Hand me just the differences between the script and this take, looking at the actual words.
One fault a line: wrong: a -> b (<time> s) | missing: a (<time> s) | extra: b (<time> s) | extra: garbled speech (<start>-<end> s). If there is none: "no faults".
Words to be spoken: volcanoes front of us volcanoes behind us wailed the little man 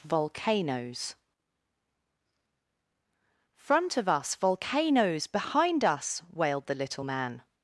no faults